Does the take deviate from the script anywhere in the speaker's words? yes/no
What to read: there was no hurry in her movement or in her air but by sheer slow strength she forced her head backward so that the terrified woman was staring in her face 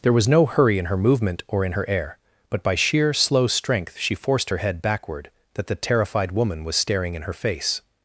yes